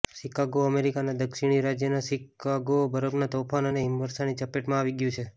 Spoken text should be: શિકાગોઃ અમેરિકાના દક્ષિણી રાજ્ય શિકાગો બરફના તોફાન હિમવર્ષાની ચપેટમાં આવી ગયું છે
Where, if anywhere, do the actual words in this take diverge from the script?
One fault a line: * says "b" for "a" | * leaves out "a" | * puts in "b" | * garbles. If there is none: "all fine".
* puts in "અને"